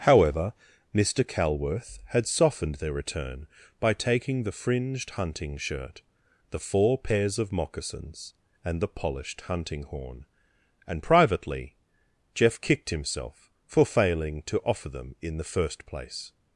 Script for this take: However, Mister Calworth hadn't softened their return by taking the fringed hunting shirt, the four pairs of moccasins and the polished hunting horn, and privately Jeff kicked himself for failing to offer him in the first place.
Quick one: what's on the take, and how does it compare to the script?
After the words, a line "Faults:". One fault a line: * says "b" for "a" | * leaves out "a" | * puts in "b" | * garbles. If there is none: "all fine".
However, Mister Calworth had softened their return by taking the fringed hunting shirt, the four pairs of moccasins and the polished hunting horn, and privately Jeff kicked himself for failing to offer them in the first place.
Faults:
* says "had" for "hadn't"
* says "them" for "him"